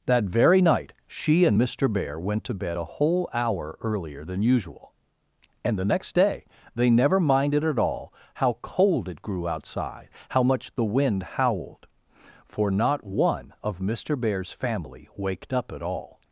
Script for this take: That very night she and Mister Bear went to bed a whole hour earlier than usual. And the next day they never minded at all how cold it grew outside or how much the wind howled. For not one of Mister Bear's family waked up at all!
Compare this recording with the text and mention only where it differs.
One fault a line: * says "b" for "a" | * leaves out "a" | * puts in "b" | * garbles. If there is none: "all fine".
* leaves out "or"